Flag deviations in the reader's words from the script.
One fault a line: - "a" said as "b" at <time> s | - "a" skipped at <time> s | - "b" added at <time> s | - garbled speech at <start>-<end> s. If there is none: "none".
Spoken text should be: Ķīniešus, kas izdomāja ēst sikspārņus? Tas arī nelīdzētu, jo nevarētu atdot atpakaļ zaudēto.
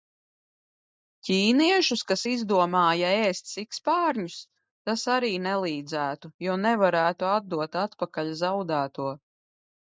none